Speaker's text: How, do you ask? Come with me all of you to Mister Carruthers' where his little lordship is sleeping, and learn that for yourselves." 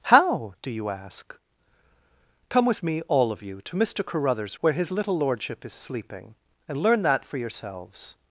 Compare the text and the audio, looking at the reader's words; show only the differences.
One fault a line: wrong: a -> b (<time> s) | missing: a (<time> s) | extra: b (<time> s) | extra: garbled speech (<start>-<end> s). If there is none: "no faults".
no faults